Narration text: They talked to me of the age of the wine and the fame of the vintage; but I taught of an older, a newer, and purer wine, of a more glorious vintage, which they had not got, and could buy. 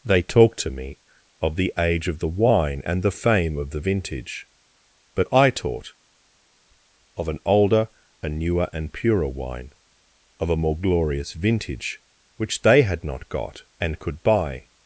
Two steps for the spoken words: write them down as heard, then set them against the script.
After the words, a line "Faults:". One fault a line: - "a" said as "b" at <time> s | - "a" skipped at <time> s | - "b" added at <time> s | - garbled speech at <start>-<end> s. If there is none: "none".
They talked to me of the age of the wine and the fame of the vintage; but I taught of an older, a newer, and purer wine, of a more glorious vintage, which they had not got, and could buy.
Faults:
none